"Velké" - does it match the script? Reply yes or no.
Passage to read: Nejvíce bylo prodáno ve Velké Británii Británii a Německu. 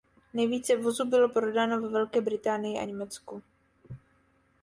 yes